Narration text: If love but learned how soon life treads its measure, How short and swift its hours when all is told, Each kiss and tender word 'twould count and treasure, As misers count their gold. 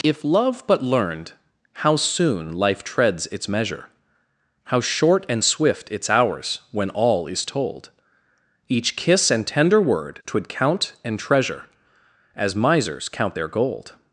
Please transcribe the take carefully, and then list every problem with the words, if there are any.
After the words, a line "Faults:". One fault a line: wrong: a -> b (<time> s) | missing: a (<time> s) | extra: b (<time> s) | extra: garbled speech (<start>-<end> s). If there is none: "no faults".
If love but learned how soon life treads its measure, How short and swift its hours when all is told, Each kiss and tender word 'twould count and treasure, As misers count their gold.
Faults:
no faults